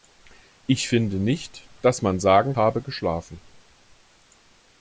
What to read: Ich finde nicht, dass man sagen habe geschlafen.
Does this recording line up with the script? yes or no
yes